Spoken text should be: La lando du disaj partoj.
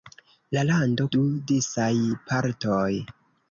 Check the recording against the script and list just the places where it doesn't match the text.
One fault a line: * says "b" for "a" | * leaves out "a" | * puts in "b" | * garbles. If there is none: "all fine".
all fine